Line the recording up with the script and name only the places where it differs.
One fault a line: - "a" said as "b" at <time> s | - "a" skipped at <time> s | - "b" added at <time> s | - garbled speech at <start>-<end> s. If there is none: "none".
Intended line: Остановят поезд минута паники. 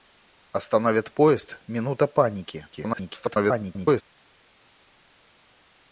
- garbled speech at 2.7-4.0 s